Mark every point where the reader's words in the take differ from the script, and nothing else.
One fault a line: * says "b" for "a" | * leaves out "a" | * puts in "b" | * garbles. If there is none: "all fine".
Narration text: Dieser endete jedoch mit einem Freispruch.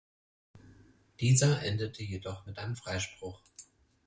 all fine